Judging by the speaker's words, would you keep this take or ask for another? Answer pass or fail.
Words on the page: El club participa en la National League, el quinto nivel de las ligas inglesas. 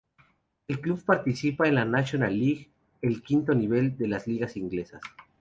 pass